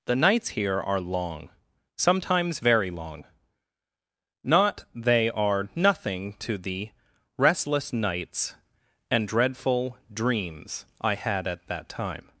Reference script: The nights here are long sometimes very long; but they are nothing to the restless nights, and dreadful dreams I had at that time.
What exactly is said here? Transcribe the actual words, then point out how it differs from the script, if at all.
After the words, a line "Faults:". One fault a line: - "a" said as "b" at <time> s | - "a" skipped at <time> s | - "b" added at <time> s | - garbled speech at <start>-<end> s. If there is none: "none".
The nights here are long sometimes very long; not they are nothing to the restless nights, and dreadful dreams I had at that time.
Faults:
- "but" said as "not" at 4.4 s